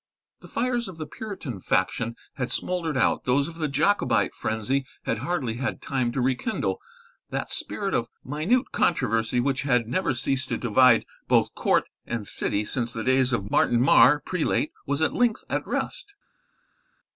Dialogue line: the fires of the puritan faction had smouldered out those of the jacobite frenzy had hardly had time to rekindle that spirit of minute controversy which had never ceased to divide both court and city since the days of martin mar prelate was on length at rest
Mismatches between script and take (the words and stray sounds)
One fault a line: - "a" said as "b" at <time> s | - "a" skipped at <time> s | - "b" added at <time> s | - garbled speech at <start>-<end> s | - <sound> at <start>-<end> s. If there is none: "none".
- "on" said as "at" at 15.0 s